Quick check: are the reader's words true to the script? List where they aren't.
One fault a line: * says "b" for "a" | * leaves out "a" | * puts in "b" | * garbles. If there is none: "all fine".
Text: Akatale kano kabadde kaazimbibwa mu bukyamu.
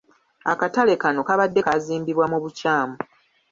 all fine